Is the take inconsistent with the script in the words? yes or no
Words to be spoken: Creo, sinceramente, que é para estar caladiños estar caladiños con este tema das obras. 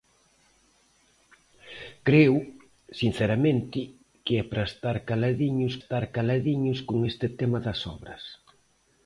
no